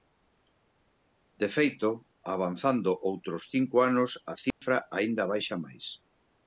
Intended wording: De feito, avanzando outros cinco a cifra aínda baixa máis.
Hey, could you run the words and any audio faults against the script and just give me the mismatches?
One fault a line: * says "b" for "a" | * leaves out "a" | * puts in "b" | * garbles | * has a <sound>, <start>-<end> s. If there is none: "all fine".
* puts in "anos"
* has a dropout, 4.5-4.6 s